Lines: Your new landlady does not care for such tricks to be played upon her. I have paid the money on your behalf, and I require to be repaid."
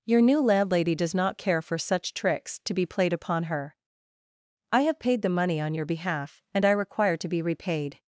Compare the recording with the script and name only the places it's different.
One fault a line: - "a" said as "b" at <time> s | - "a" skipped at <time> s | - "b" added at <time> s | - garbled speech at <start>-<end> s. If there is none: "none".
none